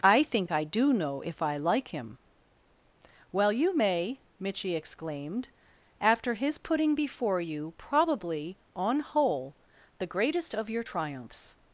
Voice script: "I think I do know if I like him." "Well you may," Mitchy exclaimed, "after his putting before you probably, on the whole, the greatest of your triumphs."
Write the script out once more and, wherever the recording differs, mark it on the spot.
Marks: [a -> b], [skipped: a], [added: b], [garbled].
"I think I do know if I like him." "Well you may," Mitchy exclaimed, "after his putting before you probably, on [skipped: the] whole, the greatest of your triumphs."